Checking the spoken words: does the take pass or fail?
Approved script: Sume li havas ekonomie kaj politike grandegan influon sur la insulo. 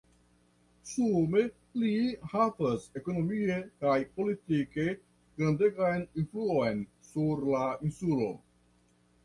pass